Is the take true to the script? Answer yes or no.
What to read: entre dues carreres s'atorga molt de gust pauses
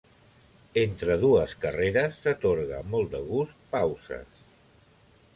no